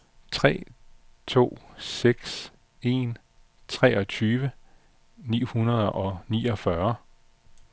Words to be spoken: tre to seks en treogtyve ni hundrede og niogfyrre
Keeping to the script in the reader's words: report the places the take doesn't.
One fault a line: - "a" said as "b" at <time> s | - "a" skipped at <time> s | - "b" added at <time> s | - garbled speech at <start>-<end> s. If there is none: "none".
none